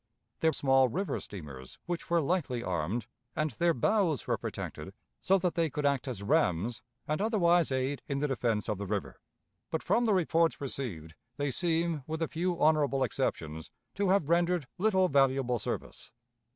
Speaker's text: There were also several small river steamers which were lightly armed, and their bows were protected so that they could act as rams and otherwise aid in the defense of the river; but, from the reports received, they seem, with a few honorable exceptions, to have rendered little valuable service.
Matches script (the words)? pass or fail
fail